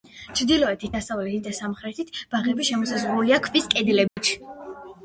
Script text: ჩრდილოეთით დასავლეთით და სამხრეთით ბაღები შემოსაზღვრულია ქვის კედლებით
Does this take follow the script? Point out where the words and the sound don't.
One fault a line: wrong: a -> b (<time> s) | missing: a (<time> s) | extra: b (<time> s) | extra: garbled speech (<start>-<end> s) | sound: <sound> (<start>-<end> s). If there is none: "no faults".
sound: dropout (4.1-4.2 s)